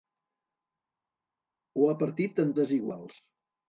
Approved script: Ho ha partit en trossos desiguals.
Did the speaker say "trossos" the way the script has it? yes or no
no